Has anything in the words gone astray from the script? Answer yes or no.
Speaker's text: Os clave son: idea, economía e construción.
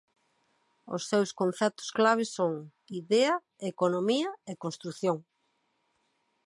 yes